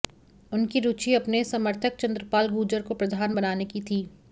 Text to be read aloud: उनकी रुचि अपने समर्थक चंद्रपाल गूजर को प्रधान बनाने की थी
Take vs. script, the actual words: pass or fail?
pass